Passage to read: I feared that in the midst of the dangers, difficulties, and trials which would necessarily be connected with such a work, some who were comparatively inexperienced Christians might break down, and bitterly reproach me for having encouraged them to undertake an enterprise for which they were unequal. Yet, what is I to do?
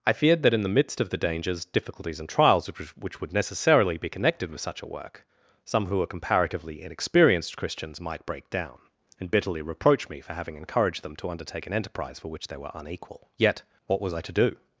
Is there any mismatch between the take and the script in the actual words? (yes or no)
yes